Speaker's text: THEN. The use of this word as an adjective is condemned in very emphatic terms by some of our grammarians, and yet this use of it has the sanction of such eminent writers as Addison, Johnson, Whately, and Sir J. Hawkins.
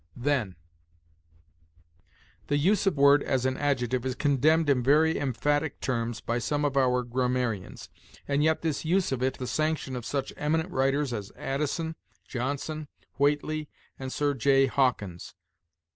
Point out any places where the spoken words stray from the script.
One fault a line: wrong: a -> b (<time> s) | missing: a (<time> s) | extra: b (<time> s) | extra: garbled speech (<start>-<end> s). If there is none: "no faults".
missing: this (3.0 s)
missing: has (9.4 s)